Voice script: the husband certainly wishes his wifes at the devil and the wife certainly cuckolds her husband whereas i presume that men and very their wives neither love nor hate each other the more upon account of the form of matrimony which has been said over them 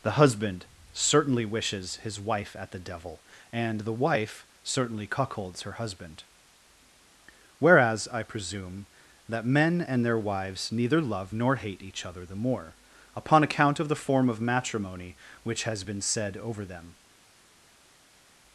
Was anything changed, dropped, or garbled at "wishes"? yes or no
no